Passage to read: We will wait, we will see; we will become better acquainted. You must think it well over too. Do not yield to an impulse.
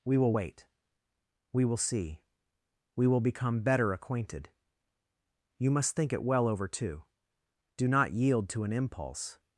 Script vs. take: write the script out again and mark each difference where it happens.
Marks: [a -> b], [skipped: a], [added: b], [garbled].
We will wait, we will see; we will become better acquainted. You must think it well over too. Do not yield to an impulse.